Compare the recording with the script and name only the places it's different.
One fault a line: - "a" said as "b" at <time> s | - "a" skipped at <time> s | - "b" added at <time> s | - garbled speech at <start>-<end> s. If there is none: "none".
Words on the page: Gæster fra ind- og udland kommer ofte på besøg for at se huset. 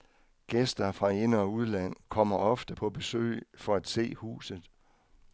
none